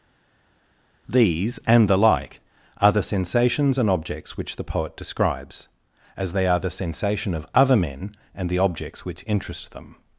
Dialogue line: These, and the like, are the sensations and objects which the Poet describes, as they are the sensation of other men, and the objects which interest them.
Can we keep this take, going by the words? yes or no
yes